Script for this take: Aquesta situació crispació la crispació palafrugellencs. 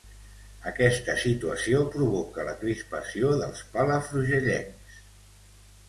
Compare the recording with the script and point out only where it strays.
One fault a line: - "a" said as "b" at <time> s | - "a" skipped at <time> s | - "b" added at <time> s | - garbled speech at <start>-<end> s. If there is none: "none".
- "crispació" said as "provoca" at 2.0 s
- "dels" added at 3.4 s